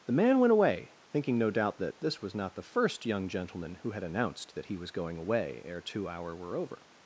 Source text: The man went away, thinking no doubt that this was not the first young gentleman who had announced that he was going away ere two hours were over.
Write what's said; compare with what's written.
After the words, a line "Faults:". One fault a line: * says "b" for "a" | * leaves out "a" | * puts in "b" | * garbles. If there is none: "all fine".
The man went away, thinking no doubt that this was not the first young gentleman who had announced that he was going away ere two hour were over.
Faults:
* says "hour" for "hours"